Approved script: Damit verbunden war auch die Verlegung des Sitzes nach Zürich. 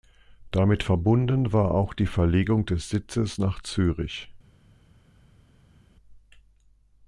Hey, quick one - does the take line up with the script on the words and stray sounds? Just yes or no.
yes